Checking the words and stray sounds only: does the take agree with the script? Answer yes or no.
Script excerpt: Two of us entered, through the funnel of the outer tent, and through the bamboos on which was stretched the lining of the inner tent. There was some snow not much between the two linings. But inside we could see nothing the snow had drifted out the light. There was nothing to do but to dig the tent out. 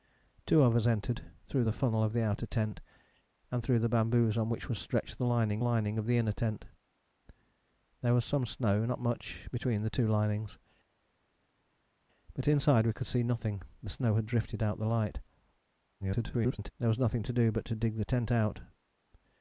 no